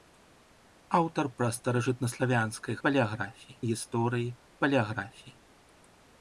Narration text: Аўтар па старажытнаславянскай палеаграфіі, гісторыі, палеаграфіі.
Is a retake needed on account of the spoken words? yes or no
no